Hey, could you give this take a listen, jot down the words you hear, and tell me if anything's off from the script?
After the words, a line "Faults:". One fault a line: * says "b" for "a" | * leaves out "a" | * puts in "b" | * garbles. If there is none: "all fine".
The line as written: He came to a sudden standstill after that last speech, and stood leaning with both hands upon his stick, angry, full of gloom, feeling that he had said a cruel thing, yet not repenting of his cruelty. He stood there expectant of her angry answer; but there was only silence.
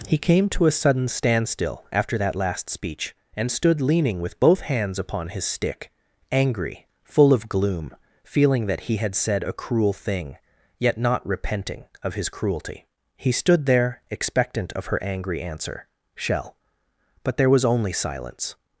He came to a sudden standstill after that last speech, and stood leaning with both hands upon his stick, angry, full of gloom, feeling that he had said a cruel thing, yet not repenting of his cruelty. He stood there expectant of her angry answer; shell but there was only silence.
Faults:
* puts in "shell"